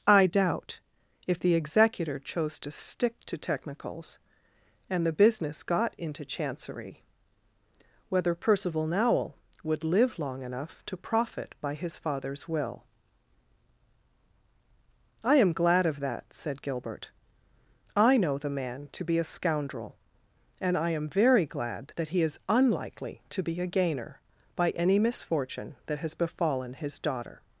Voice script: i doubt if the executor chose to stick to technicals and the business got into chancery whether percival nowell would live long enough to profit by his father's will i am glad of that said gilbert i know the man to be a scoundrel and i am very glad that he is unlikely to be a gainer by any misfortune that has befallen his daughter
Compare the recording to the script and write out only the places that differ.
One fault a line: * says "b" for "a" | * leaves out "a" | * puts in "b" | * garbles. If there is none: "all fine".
all fine